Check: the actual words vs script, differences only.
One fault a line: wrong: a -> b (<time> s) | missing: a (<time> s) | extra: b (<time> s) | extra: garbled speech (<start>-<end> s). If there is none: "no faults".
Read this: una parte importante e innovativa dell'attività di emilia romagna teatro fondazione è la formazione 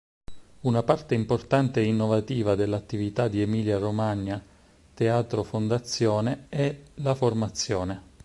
no faults